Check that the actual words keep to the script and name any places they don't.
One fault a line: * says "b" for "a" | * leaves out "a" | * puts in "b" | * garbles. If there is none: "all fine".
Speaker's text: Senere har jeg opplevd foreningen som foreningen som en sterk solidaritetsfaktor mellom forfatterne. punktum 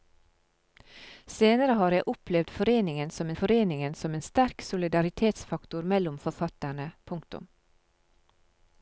all fine